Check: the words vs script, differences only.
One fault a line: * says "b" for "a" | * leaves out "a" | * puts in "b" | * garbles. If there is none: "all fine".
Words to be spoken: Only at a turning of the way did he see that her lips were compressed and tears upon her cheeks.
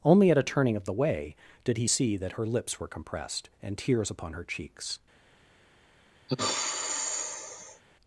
all fine